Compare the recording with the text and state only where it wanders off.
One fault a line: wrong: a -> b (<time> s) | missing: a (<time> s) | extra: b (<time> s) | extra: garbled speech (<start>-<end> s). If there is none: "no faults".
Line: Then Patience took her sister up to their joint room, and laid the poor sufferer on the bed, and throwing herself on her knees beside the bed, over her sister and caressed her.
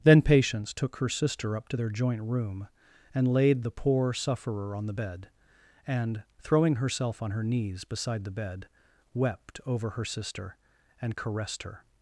extra: wept (9.1 s)